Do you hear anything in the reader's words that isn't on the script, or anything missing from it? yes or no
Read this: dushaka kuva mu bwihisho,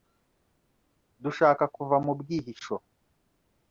no